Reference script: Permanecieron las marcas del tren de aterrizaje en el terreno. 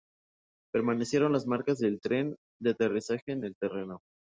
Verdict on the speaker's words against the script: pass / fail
pass